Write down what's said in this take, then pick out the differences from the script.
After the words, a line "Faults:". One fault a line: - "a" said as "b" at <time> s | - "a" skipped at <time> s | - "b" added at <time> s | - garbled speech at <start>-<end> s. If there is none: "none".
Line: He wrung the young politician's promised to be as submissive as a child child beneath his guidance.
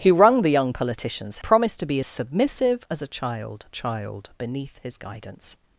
He wrung the young politician's promised to be as submissive as a child child beneath his guidance.
Faults:
none